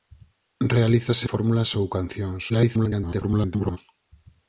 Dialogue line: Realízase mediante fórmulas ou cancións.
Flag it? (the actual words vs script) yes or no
yes